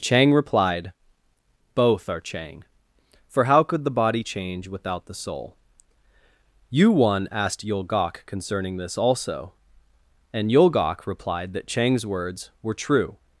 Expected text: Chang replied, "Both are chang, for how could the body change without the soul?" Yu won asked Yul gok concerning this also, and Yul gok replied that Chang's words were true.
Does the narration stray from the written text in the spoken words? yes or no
no